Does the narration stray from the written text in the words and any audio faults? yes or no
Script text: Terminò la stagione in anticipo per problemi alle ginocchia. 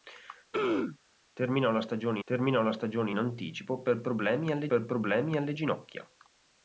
yes